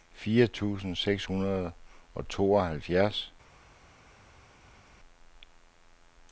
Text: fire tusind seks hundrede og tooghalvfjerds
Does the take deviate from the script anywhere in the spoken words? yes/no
no